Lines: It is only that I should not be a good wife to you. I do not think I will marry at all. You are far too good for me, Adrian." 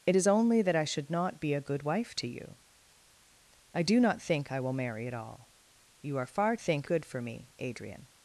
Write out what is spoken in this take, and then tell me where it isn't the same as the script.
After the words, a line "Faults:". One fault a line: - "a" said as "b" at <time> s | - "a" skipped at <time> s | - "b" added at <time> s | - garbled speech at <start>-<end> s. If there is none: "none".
It is only that I should not be a good wife to you. I do not think I will marry at all. You are far think good for me, Adrian."
Faults:
- "too" said as "think" at 6.6 s